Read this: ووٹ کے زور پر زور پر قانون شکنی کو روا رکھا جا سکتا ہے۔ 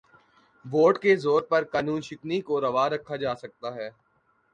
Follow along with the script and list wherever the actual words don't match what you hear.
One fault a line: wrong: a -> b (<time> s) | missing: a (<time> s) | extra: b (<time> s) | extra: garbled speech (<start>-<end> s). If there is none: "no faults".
missing: زور پر (1.6 s)